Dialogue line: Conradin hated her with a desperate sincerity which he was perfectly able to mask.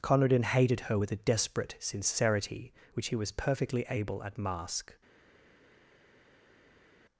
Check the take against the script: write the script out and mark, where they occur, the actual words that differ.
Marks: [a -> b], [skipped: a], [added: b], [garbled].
Conradin hated her with a desperate sincerity which he was perfectly able [to -> at] mask.